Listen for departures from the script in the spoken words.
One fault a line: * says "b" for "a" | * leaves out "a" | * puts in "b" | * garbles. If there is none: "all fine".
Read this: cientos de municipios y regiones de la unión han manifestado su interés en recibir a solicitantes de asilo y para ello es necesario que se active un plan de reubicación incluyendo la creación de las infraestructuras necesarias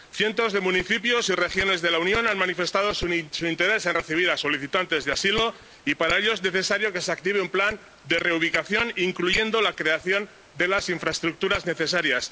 all fine